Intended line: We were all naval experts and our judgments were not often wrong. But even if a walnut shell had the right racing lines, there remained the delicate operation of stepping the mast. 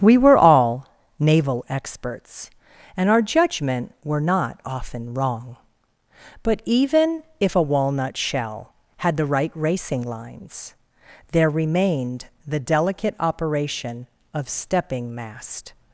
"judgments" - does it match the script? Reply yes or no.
no